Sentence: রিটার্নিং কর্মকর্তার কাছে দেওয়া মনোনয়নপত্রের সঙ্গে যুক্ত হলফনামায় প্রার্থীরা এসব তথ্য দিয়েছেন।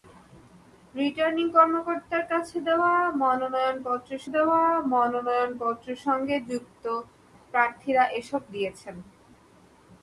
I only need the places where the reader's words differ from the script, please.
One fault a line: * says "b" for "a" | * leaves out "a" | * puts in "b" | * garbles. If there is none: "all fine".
* puts in "দেওয়া মনোনয়নপত্রের"
* leaves out "হলফনামায়"
* leaves out "তথ্য"